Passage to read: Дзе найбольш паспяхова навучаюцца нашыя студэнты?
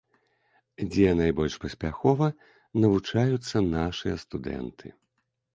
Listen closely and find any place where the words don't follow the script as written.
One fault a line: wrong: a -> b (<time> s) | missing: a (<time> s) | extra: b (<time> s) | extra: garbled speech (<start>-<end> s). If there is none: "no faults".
no faults